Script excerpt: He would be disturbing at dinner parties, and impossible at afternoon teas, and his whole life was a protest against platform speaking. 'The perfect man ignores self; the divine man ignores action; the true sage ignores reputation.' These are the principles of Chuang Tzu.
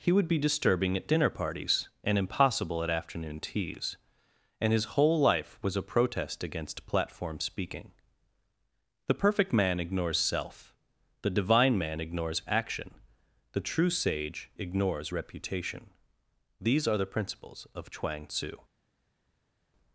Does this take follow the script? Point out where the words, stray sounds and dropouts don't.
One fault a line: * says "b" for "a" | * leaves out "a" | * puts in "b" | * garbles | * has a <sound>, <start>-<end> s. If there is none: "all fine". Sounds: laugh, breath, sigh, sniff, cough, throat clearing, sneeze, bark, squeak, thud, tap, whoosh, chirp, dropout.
all fine